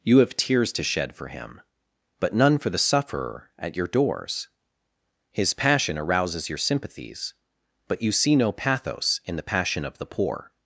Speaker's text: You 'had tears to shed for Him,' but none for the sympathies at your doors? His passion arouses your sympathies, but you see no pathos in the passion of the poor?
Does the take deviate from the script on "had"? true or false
true